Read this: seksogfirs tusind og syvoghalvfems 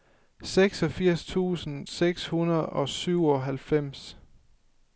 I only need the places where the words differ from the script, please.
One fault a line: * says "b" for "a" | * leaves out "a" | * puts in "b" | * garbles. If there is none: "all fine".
* puts in "seks hundrede"